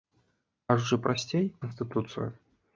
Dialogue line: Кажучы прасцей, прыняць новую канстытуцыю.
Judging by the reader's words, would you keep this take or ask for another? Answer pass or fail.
fail